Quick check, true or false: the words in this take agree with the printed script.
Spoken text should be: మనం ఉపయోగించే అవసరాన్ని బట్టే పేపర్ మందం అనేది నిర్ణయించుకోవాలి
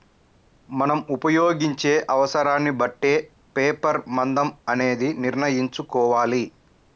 true